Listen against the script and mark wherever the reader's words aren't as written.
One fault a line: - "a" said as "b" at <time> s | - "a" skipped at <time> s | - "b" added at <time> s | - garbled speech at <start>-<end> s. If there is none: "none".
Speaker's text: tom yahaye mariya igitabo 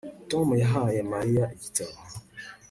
none